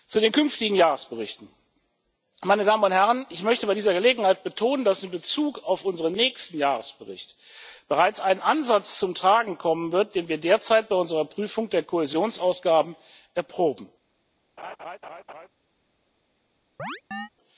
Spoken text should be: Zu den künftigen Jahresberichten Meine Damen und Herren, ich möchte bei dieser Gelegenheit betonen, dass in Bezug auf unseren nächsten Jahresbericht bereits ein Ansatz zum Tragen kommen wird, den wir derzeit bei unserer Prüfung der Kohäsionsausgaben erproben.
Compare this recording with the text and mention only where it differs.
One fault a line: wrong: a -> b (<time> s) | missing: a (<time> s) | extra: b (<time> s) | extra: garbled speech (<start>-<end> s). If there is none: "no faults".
no faults